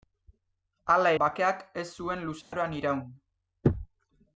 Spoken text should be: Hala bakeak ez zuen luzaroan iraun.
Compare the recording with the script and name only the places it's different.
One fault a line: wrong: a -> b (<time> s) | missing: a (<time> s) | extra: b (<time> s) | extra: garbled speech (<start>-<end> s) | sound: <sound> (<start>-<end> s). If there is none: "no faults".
sound: dropout (2.4-2.5 s)